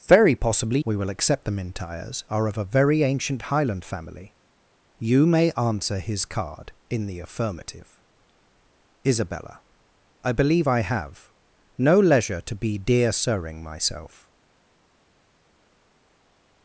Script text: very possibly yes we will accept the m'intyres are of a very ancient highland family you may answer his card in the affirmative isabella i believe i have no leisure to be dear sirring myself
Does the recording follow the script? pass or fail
fail